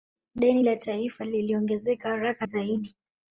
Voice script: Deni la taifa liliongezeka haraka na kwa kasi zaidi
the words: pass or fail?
fail